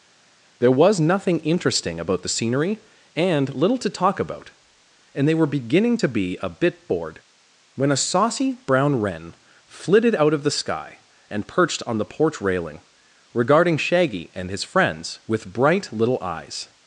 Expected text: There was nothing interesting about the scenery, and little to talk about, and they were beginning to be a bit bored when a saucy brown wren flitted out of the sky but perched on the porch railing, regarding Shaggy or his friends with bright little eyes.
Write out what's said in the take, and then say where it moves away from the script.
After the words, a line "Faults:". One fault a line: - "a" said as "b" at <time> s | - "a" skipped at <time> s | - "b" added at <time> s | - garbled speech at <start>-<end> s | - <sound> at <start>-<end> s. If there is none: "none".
There was nothing interesting about the scenery, and little to talk about, and they were beginning to be a bit bored when a saucy brown wren flitted out of the sky and perched on the porch railing, regarding Shaggy and his friends with bright little eyes.
Faults:
- "but" said as "and" at 11.3 s
- "or" said as "and" at 14.3 s